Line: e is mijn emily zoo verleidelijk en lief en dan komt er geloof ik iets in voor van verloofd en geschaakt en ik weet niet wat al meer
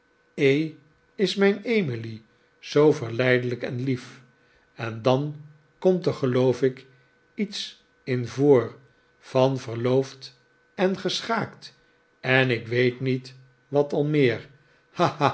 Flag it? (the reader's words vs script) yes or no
no